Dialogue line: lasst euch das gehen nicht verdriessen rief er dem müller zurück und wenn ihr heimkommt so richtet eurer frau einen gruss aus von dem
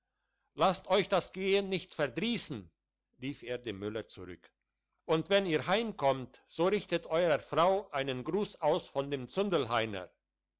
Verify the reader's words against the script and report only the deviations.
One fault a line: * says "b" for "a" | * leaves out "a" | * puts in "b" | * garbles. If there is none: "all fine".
all fine